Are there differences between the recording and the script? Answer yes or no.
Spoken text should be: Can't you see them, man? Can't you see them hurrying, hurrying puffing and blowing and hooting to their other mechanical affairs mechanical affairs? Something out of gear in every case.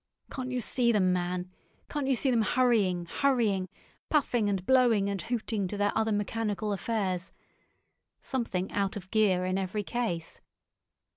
yes